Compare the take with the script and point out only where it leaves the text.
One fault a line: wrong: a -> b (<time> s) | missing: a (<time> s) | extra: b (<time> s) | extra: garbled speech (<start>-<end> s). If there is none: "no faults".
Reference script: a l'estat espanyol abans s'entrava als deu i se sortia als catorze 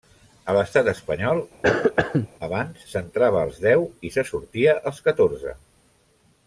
no faults